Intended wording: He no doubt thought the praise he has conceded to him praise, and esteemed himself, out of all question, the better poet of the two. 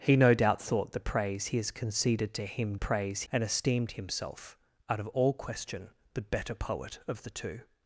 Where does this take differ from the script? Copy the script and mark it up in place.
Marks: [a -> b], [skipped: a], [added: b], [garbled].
He no doubt thought the praise he has conceded to him praise, and esteemed himself, out of all question, the better poet of the two.